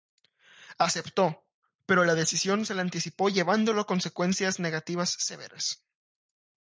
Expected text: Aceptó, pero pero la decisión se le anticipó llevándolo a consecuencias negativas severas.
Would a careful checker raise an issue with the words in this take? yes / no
yes